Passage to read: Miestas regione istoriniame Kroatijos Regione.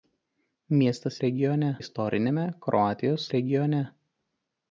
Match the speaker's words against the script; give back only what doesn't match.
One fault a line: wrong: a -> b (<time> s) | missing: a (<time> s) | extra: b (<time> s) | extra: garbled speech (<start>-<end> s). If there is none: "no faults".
no faults